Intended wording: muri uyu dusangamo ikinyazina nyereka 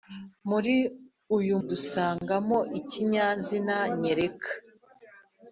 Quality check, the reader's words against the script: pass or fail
pass